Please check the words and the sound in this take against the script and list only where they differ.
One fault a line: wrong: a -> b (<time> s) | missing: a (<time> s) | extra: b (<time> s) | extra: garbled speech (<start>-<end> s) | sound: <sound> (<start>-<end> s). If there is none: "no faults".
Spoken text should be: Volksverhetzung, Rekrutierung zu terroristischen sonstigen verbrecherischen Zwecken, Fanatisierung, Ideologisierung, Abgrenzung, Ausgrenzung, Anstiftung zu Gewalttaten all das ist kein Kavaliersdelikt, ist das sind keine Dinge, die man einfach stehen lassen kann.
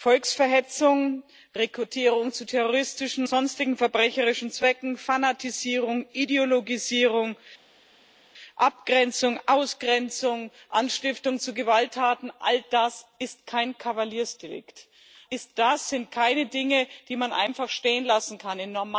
no faults